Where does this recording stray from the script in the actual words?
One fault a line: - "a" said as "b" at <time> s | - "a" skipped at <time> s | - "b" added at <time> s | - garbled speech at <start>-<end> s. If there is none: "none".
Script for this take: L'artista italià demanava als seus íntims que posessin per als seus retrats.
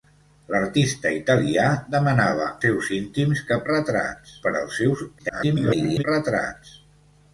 - "als" skipped at 2.5 s
- "posessin" said as "retrats" at 3.7 s
- garbled speech at 5.2-6.0 s